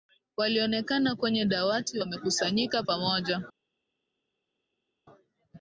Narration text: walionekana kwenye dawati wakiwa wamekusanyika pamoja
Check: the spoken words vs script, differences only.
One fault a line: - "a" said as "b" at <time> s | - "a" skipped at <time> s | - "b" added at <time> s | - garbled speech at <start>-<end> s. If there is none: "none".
- "wakiwa" skipped at 2.0 s